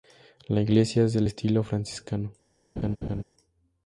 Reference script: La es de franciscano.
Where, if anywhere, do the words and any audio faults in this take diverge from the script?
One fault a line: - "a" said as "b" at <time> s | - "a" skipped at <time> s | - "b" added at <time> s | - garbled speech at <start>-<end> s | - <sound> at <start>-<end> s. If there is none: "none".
- "iglesia" added at 0.6 s
- "estilo" added at 1.3 s
- laugh at 2.8-3.2 s